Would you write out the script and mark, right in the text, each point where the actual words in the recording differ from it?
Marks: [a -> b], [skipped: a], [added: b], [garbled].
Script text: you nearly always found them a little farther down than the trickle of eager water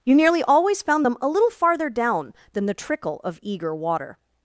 you nearly always found them a little farther down than the trickle of eager water